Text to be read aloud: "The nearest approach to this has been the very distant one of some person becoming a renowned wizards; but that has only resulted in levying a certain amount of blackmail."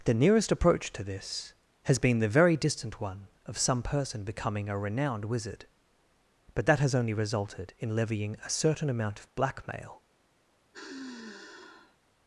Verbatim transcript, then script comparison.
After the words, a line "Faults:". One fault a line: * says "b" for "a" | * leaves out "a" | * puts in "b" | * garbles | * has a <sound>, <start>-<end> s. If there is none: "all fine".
"The nearest approach to this has been the very distant one of some person becoming a renowned wizard; but that has only resulted in levying a certain amount of blackmail."
Faults:
* says "wizard" for "wizards"
* has a sigh, 10.7-12.0 s